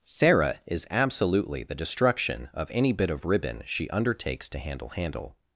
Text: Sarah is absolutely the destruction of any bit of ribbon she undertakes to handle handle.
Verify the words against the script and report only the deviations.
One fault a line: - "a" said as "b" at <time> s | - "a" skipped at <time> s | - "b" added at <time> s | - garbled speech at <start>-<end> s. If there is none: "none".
none